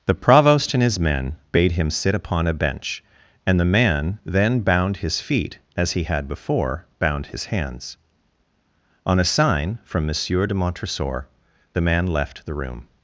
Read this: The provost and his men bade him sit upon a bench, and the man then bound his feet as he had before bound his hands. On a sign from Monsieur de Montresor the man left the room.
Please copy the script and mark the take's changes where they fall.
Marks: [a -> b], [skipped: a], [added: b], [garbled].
The provost and his men bade him sit upon a bench, and the man then bound his feet as he had before bound his hands. On a sign from Monsieur de Montresor the man left the room.